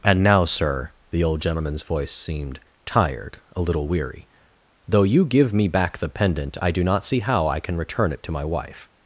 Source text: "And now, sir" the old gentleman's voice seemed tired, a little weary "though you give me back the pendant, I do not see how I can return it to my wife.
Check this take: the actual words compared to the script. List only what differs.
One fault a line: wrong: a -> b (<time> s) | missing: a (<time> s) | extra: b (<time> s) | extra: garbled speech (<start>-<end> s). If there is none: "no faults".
no faults